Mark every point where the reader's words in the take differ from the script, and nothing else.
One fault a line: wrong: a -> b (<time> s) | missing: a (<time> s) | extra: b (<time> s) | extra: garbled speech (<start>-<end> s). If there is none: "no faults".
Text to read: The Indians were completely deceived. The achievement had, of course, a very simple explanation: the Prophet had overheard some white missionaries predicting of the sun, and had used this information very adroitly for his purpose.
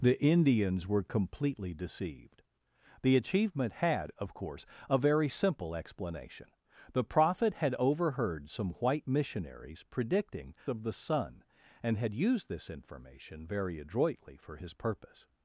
no faults